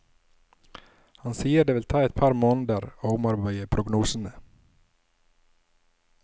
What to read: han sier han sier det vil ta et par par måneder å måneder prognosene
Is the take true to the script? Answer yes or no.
no